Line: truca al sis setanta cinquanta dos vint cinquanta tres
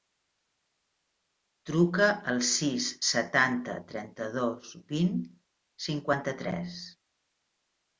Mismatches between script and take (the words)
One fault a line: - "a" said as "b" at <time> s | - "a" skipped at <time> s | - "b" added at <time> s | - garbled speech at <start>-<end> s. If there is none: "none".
- "cinquanta" said as "trenta" at 3.9 s